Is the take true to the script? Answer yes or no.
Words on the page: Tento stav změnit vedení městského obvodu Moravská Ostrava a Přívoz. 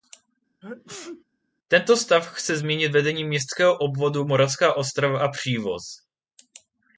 no